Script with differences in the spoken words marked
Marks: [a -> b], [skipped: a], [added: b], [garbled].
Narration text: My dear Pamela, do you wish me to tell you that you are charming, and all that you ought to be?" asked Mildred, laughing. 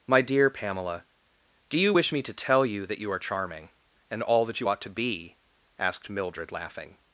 My dear Pamela, do you wish me to tell you that you are charming, and all that you ought to be?" asked Mildred, laughing.